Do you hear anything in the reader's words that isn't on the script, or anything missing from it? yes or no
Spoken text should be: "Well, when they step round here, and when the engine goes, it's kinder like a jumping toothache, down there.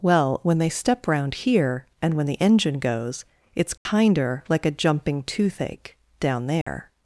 no